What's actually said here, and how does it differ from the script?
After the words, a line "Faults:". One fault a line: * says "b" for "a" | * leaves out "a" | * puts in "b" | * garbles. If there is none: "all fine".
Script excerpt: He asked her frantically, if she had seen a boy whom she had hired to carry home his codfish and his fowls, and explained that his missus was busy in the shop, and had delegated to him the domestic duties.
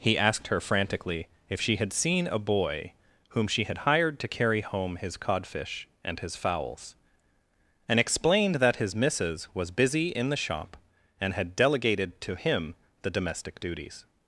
He asked her frantically, if she had seen a boy whom she had hired to carry home his codfish and his fowls, and explained that his missus was busy in the shop, and had delegated to him the domestic duties.
Faults:
all fine